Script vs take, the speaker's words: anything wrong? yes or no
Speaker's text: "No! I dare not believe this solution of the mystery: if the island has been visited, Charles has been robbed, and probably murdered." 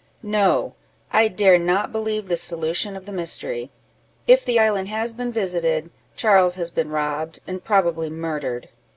no